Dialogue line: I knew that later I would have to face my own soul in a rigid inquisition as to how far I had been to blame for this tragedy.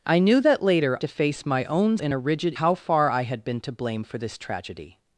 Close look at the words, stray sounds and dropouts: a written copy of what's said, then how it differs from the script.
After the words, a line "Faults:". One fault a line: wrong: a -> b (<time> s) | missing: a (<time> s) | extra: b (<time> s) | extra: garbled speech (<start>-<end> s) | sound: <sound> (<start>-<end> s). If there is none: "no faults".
I knew that later to face my own in a rigid how far I had been to blame for this tragedy.
Faults:
missing: I would have (1.0 s)
missing: soul (2.0 s)
missing: inquisition as to (2.5 s)